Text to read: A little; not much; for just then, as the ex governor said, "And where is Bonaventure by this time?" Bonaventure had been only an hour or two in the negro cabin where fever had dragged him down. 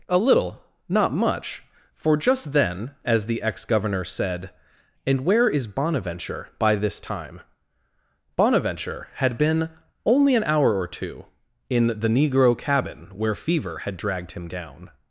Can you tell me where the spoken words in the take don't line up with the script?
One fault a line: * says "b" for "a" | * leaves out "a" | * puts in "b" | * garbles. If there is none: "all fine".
all fine